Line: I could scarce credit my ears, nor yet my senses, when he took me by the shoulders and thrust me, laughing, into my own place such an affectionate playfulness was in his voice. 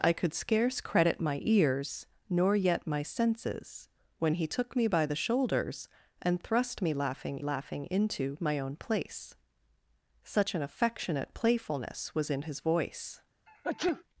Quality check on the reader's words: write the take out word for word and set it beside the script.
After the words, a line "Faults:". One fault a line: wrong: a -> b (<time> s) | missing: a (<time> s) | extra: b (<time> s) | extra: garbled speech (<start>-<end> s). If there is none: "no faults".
I could scarce credit my ears, nor yet my senses, when he took me by the shoulders and thrust me, laughing laughing, into my own place such an affectionate playfulness was in his voice.
Faults:
extra: laughing (7.4 s)